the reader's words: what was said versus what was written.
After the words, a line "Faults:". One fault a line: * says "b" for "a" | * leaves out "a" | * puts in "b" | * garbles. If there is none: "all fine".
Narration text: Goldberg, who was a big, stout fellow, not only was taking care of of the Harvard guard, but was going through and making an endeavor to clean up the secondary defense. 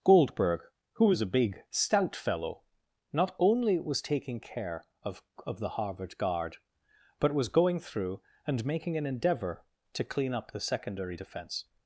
Goldberg, who was a big, stout fellow, not only was taking care of of the Harvard guard, but was going through and making an endeavor to clean up the secondary defense.
Faults:
all fine